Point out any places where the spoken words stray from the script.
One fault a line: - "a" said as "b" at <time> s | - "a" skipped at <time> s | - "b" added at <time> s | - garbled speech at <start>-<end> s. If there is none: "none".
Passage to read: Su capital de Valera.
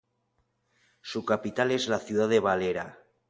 - "es la ciudad" added at 1.7 s